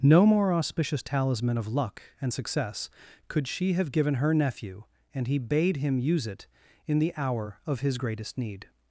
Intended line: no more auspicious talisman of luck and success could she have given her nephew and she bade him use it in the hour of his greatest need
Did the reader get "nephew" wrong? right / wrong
right